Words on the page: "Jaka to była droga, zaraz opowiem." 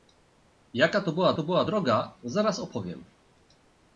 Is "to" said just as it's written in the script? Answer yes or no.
yes